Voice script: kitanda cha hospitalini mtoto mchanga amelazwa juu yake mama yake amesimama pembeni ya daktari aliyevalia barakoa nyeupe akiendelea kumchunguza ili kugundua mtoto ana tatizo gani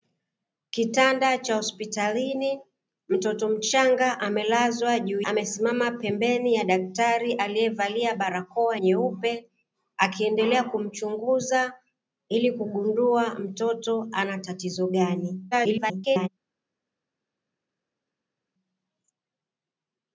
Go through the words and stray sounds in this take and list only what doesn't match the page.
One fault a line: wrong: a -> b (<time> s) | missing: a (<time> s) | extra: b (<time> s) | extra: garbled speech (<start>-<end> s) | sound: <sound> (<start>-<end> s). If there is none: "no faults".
missing: yake mama yake (5.2 s)
extra: garbled speech (15.5-16.3 s)